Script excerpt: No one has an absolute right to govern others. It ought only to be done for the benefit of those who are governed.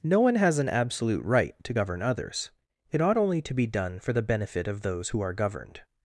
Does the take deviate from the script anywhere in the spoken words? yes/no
no